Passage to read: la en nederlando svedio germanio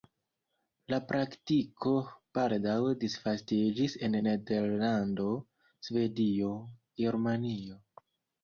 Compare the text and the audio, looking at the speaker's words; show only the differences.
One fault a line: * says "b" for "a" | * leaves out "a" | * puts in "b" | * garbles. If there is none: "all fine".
* puts in "praktiko baldaŭ disvastiĝis"